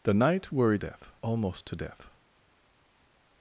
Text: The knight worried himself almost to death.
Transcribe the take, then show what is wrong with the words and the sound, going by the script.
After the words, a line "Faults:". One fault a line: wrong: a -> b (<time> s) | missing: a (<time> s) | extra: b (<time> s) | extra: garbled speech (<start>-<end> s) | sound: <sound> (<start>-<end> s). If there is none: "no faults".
The knight worried death almost to death.
Faults:
wrong: himself -> death (0.8 s)